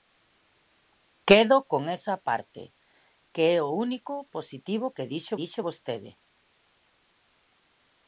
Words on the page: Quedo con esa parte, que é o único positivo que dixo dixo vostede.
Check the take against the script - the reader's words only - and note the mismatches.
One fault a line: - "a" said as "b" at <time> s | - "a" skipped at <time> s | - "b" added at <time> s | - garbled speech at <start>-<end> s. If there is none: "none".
none